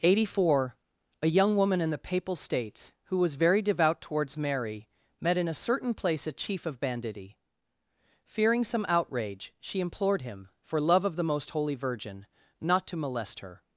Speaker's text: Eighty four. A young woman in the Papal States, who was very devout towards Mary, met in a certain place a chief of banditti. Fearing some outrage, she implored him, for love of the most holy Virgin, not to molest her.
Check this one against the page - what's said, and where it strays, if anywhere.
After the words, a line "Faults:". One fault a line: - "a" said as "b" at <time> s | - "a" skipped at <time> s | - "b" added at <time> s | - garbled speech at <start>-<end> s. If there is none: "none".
Eighty four. A young woman in the Papal States, who was very devout towards Mary, met in a certain place a chief of banditti. Fearing some outrage, she implored him, for love of the most holy Virgin, not to molest her.
Faults:
none